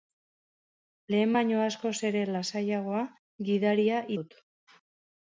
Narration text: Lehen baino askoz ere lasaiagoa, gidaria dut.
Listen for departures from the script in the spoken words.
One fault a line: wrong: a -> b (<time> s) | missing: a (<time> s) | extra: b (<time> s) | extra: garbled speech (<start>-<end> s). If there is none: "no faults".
no faults